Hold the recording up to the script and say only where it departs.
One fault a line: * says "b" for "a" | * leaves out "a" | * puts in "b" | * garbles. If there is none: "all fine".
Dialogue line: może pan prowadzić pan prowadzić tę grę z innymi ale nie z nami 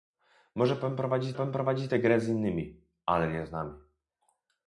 all fine